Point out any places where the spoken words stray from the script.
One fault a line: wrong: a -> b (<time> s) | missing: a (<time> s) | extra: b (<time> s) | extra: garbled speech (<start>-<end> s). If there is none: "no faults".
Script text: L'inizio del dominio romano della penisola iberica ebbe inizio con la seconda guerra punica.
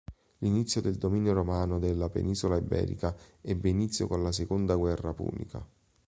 no faults